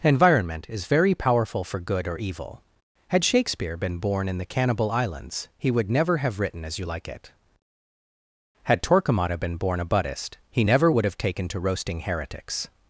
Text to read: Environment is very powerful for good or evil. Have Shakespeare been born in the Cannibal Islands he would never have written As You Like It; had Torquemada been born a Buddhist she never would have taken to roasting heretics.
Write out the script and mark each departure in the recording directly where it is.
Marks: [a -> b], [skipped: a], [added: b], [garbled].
Environment is very powerful for good or evil. [Have -> Had] Shakespeare been born in the Cannibal Islands he would never have written As You Like It; had Torquemada been born a Buddhist [she -> he] never would have taken to roasting heretics.